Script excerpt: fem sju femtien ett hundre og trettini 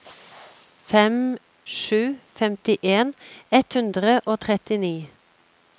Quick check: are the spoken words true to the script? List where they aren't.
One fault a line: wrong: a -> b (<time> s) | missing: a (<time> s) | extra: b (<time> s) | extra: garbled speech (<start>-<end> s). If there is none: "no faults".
no faults